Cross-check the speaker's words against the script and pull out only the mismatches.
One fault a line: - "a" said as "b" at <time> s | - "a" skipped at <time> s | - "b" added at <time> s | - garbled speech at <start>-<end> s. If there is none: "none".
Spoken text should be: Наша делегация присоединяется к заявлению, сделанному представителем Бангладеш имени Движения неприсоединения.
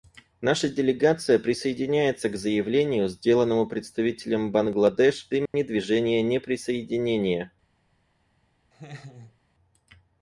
none